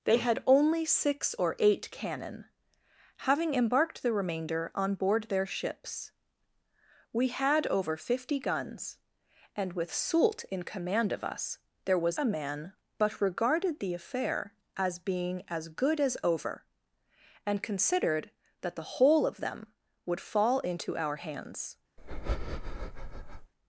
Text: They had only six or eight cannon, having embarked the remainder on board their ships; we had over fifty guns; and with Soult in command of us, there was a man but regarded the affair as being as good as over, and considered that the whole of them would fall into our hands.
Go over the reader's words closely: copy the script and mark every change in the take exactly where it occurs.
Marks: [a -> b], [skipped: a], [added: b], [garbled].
They had only six or eight cannon, having embarked the remainder on board their ships; we had over fifty guns; and with Soult in command of us, there was a man but regarded the affair as being as good as over, and considered that the whole of them would fall into our hands.